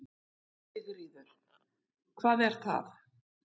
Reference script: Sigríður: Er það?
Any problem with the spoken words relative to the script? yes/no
yes